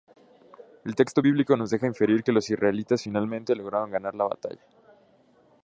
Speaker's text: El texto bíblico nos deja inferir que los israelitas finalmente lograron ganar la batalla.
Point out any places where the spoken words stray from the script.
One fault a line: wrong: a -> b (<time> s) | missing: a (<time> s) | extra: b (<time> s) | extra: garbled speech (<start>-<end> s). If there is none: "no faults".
no faults